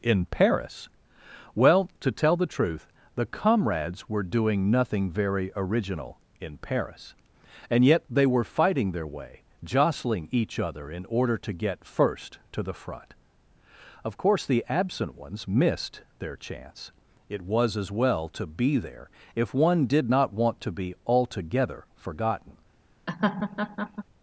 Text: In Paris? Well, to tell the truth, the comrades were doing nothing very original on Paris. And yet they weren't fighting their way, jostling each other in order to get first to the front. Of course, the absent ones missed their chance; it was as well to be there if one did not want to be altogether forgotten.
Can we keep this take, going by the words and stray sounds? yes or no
no